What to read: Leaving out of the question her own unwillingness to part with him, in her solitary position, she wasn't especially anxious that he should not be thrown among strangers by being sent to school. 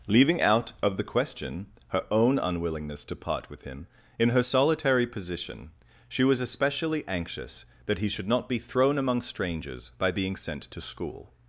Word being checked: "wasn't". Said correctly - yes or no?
no